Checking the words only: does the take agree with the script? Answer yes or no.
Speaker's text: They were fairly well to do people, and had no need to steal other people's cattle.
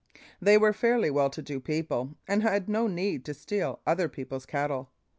yes